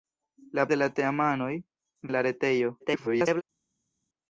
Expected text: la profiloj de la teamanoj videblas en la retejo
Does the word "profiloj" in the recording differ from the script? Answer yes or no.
yes